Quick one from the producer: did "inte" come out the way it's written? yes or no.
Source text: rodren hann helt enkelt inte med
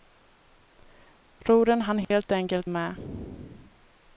no